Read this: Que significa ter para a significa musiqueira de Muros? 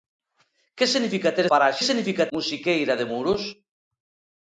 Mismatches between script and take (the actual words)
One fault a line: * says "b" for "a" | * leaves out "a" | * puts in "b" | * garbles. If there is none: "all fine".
all fine